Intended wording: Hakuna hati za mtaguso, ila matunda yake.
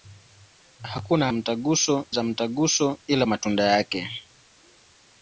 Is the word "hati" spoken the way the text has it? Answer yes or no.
no